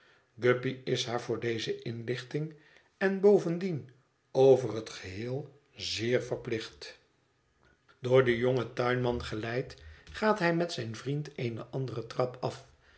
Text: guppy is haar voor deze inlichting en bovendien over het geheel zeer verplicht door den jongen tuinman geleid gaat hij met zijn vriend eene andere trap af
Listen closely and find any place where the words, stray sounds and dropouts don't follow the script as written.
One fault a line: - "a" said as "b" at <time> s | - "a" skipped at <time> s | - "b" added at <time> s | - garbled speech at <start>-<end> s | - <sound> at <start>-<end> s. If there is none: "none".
none